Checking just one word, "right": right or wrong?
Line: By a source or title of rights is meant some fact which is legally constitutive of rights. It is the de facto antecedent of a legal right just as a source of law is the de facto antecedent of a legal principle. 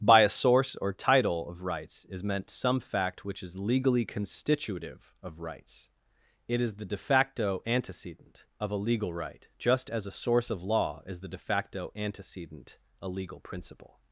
right